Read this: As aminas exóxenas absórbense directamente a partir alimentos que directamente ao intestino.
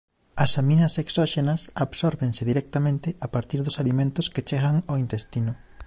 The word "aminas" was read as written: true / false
true